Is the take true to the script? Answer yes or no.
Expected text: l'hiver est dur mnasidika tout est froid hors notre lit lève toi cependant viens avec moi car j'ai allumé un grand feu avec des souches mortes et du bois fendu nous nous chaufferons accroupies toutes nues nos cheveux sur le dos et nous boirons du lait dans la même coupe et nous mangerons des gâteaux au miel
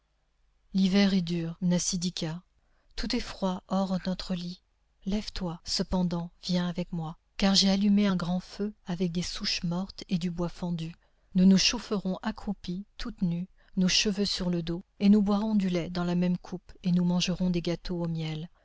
yes